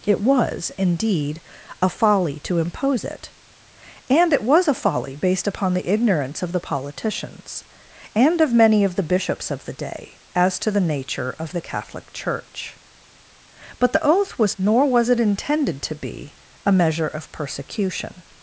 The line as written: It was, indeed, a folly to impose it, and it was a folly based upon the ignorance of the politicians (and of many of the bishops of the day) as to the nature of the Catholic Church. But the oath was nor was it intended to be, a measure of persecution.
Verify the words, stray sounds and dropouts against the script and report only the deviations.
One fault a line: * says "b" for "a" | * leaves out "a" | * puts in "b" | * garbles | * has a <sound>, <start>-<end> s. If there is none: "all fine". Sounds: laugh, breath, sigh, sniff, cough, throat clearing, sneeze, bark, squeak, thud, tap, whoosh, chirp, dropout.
all fine